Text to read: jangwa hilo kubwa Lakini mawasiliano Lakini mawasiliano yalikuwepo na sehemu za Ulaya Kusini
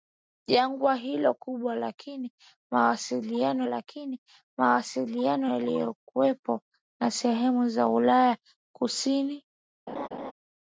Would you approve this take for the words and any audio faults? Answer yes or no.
no